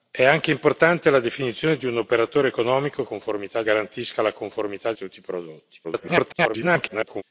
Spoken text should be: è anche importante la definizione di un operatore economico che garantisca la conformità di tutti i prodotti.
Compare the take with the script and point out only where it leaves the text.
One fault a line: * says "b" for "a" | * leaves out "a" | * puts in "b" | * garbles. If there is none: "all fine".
* says "conformità" for "che"
* leaves out "di"
* garbles